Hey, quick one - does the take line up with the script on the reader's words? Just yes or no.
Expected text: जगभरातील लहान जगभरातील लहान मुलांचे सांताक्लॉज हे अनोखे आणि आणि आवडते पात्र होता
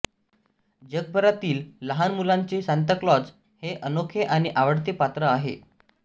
no